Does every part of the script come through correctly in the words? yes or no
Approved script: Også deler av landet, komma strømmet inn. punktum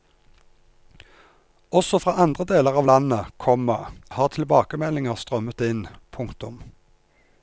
no